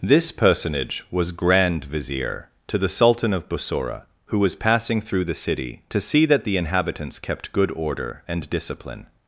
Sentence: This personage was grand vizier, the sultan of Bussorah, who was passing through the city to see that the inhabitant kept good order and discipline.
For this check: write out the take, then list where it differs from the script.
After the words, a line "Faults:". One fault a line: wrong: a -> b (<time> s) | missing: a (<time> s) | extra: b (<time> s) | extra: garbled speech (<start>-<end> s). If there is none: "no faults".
This personage was grand vizier, to the sultan of Bussorah, who was passing through the city to see that the inhabitants kept good order and discipline.
Faults:
extra: to (2.6 s)
wrong: inhabitant -> inhabitants (6.6 s)